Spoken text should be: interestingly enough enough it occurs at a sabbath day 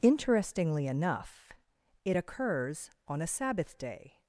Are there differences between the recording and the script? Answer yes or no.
yes